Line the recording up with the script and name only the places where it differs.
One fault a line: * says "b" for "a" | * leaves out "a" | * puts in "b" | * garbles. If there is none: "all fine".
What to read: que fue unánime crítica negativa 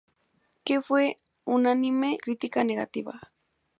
all fine